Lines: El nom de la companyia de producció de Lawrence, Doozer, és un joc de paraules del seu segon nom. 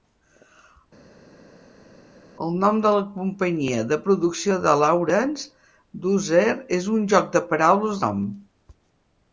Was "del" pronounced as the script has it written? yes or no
no